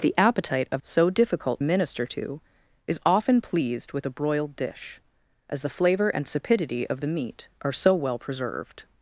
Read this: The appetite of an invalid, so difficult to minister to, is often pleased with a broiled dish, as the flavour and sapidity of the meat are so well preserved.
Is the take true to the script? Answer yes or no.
no